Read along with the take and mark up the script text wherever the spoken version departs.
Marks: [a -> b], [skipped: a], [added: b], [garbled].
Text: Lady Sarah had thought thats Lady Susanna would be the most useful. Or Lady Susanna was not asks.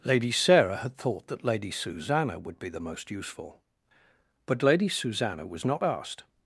Lady Sarah had thought [thats -> that] Lady Susanna would be the most useful. [Or -> But] Lady Susanna was not [asks. -> asked]